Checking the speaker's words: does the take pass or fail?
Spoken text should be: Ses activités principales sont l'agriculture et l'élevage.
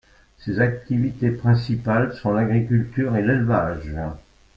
pass